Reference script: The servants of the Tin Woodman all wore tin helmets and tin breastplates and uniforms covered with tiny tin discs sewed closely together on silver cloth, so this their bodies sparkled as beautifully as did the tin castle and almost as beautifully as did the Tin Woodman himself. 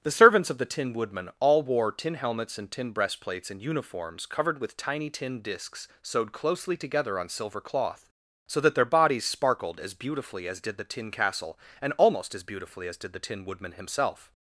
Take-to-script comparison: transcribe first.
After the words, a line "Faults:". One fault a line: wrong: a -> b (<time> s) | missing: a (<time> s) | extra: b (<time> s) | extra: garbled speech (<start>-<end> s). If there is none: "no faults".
The servants of the Tin Woodman all wore tin helmets and tin breastplates and uniforms covered with tiny tin discs sewed closely together on silver cloth, so that their bodies sparkled as beautifully as did the tin castle and almost as beautifully as did the Tin Woodman himself.
Faults:
wrong: this -> that (8.6 s)